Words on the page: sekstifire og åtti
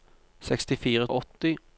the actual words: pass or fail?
pass